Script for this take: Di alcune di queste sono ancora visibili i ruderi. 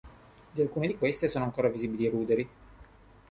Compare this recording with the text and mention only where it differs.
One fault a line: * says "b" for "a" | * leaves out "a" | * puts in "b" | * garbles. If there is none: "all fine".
all fine